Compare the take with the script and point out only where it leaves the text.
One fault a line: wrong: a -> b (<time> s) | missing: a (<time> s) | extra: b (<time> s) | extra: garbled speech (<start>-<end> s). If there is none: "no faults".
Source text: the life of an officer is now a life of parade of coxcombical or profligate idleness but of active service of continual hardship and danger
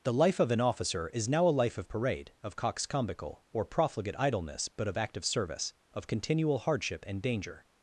no faults